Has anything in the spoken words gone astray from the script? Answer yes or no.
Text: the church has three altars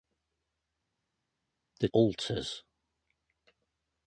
yes